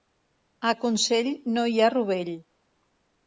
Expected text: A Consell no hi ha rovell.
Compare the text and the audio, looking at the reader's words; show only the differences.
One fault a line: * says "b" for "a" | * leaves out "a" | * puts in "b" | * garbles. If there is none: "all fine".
all fine